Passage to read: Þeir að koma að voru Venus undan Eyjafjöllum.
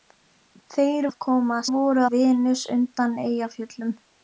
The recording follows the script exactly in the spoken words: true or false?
true